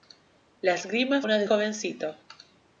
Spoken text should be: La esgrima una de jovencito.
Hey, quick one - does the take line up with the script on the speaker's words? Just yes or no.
yes